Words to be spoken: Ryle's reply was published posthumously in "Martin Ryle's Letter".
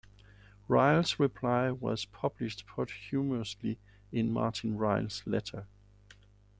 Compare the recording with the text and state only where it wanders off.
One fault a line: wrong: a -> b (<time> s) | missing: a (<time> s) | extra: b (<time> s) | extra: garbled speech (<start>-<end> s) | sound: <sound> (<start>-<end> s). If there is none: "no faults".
no faults